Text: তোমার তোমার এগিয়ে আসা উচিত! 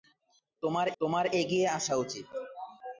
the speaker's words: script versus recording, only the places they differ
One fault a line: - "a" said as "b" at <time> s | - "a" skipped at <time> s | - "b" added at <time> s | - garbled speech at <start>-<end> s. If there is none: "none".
none